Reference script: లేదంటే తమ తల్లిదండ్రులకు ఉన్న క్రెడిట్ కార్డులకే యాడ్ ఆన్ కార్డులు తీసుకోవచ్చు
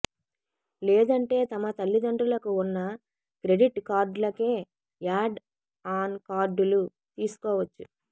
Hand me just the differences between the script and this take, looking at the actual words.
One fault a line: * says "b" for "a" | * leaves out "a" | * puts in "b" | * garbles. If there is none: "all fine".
all fine